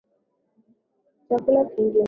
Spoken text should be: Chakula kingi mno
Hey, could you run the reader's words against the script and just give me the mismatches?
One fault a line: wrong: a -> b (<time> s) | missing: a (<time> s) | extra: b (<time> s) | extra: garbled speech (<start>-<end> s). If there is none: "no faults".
no faults